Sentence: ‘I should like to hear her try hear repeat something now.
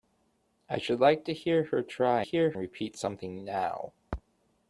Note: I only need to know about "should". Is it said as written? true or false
true